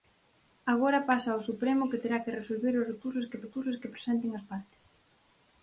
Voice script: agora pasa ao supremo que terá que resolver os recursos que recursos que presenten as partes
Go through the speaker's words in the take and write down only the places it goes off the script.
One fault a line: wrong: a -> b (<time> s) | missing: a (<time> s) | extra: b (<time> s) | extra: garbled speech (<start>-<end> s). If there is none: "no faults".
no faults